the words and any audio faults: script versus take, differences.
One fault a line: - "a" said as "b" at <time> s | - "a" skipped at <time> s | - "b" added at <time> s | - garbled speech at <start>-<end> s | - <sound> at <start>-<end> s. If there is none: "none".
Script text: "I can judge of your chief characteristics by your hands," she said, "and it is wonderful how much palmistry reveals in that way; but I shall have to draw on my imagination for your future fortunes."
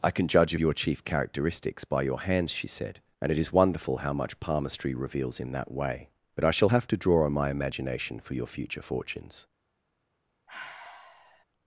- sigh at 10.5-11.5 s